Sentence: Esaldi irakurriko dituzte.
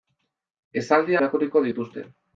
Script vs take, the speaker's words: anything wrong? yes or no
no